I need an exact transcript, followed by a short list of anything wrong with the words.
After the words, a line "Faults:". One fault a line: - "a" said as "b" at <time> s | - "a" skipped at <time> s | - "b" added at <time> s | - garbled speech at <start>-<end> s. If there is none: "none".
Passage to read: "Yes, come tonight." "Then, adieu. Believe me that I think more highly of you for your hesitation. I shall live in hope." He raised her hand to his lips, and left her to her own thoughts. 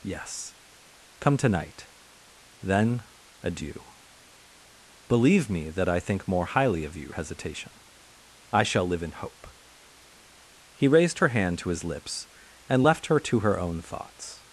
"Yes, come tonight." "Then, adieu. Believe me that I think more highly of you hesitation. I shall live in hope." He raised her hand to his lips, and left her to her own thoughts.
Faults:
- "for your" skipped at 7.1 s